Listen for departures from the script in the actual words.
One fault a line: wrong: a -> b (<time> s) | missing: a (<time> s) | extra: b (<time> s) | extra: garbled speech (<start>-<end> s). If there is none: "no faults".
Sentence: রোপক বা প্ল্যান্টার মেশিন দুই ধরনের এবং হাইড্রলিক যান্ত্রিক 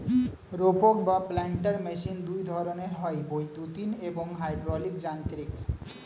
extra: হয় বৈদ্যুতিন (2.9 s)